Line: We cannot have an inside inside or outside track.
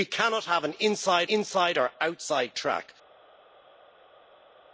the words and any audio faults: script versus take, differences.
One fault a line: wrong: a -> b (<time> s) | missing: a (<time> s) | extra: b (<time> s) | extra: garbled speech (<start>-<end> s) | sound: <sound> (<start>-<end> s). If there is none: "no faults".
no faults